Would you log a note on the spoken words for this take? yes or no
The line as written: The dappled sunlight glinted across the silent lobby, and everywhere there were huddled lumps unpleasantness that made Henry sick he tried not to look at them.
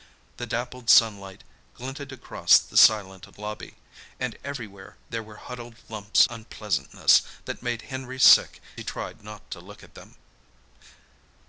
no